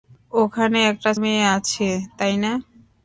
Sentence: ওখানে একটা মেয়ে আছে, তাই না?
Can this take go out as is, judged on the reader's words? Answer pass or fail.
pass